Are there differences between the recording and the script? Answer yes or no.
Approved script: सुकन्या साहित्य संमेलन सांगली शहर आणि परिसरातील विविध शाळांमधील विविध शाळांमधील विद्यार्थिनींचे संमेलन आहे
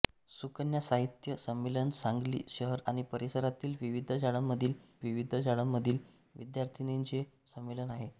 no